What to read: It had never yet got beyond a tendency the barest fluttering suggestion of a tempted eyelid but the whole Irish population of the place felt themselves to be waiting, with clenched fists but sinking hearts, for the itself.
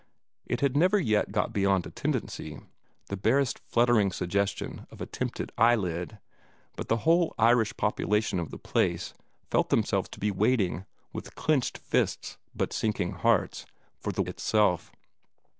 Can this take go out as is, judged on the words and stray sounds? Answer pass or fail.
pass